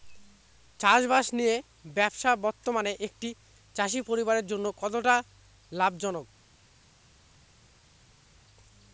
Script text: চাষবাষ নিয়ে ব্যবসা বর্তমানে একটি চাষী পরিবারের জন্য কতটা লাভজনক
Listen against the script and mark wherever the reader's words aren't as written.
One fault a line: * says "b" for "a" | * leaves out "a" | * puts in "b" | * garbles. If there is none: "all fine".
all fine